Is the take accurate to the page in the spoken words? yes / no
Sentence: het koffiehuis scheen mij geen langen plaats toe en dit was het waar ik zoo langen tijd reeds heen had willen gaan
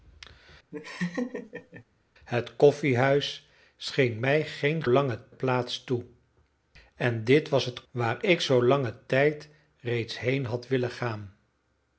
yes